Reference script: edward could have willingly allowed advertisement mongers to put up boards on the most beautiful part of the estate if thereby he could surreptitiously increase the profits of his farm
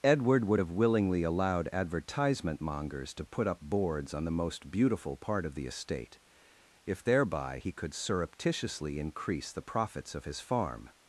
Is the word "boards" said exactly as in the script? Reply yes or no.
yes